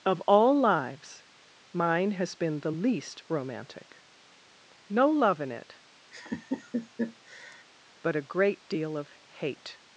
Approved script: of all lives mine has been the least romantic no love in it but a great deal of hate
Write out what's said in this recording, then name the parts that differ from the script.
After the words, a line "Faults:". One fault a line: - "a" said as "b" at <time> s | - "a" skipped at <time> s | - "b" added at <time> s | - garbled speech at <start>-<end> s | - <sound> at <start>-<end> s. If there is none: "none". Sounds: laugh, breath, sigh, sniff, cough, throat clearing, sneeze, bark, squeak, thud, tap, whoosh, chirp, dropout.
of all lives mine has been the least romantic no love in it but a great deal of hate
Faults:
- laugh at 6.1-7.6 s